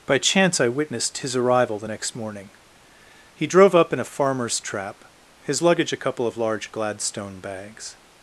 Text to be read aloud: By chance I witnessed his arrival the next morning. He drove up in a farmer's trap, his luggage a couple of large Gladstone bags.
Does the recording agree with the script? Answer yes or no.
yes